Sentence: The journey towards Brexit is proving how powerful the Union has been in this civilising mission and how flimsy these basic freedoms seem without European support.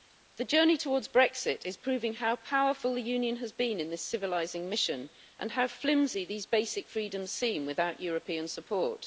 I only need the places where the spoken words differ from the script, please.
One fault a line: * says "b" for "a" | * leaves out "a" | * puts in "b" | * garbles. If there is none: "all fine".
all fine